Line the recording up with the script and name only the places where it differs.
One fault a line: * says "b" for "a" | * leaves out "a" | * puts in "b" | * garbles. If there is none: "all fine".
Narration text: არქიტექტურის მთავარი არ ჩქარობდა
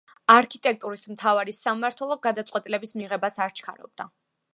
* puts in "სამმართველო გადაწყვეტილების მიღებას"